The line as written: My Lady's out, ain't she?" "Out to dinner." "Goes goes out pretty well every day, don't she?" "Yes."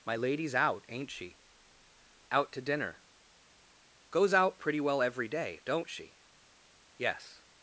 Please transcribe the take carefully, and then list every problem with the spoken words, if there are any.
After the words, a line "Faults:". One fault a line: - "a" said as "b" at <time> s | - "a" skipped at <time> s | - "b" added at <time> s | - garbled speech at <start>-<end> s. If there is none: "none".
My Lady's out, ain't she?" "Out to dinner." "Goes out pretty well every day, don't she?" "Yes."
Faults:
- "goes" skipped at 4.3 s